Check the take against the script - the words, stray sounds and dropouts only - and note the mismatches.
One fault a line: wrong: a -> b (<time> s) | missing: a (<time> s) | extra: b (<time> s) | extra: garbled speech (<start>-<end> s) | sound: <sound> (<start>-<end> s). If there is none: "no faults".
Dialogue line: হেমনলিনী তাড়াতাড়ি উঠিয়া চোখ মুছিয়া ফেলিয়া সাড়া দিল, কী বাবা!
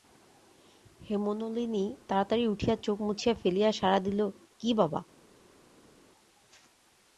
no faults